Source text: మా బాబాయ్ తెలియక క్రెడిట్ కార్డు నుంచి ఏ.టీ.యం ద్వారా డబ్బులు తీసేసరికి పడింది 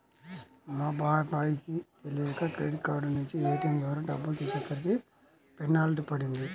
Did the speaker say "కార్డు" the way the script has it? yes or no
yes